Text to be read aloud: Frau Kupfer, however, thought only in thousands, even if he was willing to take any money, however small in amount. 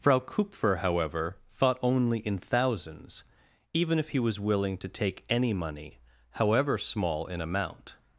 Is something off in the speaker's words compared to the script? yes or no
no